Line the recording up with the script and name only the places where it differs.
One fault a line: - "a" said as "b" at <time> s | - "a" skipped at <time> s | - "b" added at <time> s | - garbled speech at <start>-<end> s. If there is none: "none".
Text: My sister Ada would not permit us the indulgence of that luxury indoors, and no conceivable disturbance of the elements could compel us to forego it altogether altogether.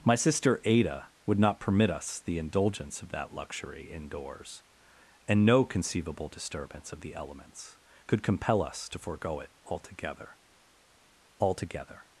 none